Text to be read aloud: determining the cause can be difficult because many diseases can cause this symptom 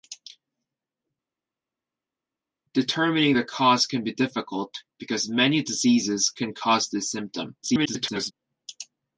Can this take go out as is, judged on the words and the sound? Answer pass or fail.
fail